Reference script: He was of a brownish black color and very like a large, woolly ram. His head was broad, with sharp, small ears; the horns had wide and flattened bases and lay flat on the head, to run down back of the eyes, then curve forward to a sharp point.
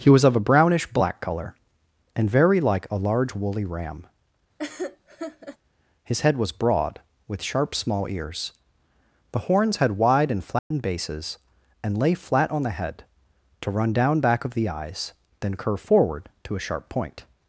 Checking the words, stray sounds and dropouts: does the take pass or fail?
fail